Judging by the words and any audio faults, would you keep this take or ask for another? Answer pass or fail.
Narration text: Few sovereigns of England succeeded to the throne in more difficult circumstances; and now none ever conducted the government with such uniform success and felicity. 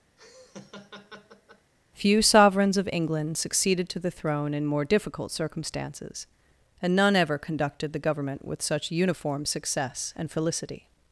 fail